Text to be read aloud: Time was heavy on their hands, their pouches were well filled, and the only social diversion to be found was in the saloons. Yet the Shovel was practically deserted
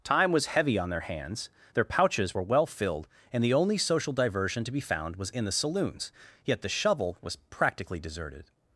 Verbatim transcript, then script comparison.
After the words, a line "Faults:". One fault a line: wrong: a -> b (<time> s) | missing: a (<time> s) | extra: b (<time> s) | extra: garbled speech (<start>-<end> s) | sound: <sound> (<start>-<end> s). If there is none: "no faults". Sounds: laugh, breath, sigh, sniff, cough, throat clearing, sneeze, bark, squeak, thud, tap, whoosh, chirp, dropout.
Time was heavy on their hands, their pouches were well filled, and the only social diversion to be found was in the saloons. Yet the Shovel was practically deserted
Faults:
no faults